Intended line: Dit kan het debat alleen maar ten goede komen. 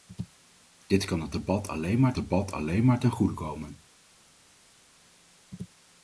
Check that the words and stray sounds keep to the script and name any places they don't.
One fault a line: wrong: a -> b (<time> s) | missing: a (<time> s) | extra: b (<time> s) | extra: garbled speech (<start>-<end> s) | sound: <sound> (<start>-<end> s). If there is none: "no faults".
extra: debat alleen maar (2.1 s)